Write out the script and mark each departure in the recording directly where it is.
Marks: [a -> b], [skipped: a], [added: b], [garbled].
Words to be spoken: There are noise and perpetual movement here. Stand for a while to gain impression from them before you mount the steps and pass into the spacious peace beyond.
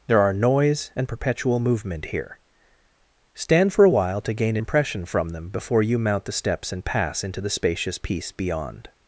There are noise and perpetual movement here. Stand for a while to gain impression from them before you mount the steps and pass into the spacious peace beyond.